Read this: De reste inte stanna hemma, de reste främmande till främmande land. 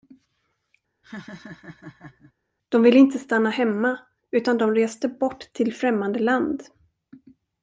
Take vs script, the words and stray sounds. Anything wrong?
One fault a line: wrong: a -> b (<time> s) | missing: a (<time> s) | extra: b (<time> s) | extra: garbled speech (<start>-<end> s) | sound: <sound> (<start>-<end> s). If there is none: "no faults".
sound: laugh (1.0-2.3 s)
wrong: reste -> ville (2.8 s)
extra: utan (4.3 s)
wrong: främmande -> bort (5.1 s)